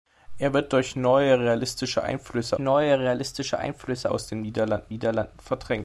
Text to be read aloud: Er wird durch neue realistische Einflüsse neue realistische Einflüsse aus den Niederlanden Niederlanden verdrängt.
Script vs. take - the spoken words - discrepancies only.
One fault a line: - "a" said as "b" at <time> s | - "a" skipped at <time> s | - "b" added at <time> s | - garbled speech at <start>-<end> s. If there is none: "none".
none